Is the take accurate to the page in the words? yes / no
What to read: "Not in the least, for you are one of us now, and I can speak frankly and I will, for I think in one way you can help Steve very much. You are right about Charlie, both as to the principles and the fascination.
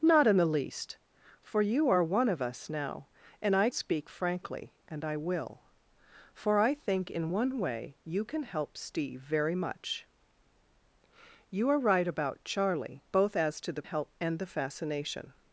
no